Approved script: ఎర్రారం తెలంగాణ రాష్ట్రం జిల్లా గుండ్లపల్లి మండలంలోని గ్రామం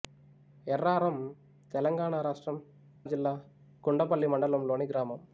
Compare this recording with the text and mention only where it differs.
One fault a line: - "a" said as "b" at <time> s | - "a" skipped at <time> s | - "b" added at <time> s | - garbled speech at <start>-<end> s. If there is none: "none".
none